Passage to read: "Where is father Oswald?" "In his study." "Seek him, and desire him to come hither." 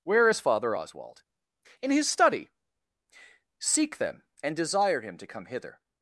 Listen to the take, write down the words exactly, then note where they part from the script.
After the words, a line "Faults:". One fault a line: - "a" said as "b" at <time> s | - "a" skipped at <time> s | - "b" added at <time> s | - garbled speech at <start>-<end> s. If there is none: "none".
"Where is father Oswald?" "In his study." "Seek them, and desire him to come hither."
Faults:
- "him" said as "them" at 4.0 s